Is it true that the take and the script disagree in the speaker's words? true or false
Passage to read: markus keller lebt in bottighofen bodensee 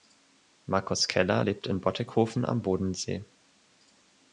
true